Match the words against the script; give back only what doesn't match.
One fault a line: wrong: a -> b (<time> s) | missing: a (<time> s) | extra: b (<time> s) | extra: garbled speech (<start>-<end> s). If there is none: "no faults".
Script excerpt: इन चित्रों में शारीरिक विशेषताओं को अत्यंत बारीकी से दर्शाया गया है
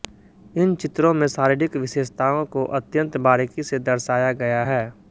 no faults